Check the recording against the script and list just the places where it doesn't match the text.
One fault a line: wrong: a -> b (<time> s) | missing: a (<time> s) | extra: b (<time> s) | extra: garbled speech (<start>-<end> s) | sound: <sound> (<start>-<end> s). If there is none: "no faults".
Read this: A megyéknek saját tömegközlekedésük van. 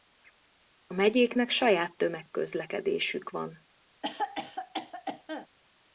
sound: cough (4.0-5.5 s)